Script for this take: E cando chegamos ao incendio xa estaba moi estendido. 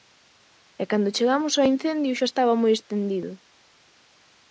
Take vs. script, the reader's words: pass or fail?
pass